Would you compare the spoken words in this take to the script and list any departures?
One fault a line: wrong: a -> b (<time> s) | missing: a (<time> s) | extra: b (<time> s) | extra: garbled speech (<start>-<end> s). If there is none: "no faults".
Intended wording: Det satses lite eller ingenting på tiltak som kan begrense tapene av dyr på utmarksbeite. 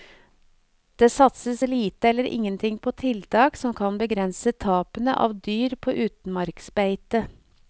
no faults